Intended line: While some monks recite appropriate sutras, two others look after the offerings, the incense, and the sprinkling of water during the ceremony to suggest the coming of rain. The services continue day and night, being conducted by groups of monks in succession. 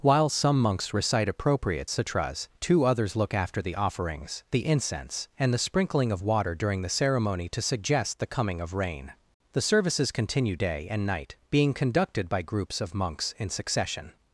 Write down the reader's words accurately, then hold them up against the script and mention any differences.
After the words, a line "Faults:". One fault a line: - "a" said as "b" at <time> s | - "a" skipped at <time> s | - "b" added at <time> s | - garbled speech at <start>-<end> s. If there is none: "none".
While some monks recite appropriate sutras, two others look after the offerings, the incense, and the sprinkling of water during the ceremony to suggest the coming of rain. The services continue day and night, being conducted by groups of monks in succession.
Faults:
none